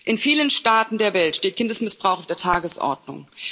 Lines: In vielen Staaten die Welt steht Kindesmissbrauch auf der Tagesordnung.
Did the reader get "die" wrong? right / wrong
wrong